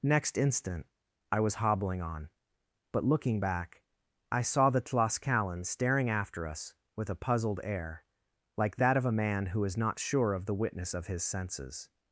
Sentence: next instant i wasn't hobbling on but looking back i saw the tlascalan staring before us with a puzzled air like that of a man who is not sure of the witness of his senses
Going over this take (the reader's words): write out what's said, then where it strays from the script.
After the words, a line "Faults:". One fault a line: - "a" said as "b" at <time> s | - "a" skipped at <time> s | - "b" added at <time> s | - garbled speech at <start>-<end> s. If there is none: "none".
next instant i was hobbling on but looking back i saw the tlascalan staring after us with a puzzled air like that of a man who is not sure of the witness of his senses
Faults:
- "wasn't" said as "was" at 1.4 s
- "before" said as "after" at 6.1 s